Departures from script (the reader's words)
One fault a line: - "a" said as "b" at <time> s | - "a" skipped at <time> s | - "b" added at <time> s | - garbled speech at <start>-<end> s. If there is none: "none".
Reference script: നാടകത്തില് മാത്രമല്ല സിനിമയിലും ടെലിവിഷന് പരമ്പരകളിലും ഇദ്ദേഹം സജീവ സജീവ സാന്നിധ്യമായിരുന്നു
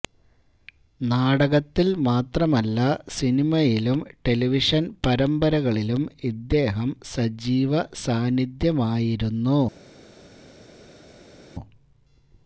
- "സജീവ" skipped at 7.7 s